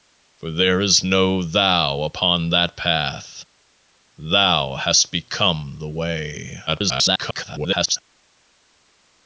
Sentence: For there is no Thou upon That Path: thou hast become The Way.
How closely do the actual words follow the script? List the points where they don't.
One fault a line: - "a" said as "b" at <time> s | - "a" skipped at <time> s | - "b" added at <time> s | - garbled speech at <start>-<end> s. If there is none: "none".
- garbled speech at 6.7-8.0 s